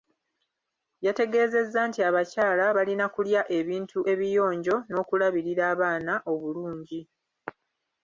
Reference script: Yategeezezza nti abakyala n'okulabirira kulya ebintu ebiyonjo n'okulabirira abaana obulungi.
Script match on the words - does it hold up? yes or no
no